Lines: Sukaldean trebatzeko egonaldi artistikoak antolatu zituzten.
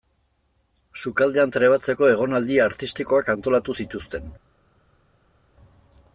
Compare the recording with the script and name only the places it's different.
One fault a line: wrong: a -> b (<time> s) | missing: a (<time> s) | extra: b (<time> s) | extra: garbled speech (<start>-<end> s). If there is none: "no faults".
no faults